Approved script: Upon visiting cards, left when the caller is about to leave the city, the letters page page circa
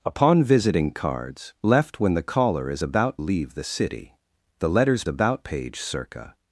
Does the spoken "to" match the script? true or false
false